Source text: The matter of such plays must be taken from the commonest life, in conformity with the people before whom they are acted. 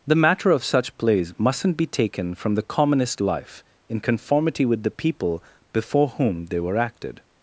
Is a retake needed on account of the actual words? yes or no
yes